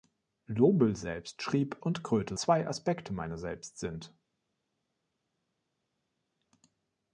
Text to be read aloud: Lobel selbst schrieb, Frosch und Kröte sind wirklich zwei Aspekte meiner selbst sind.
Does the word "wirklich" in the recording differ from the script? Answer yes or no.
yes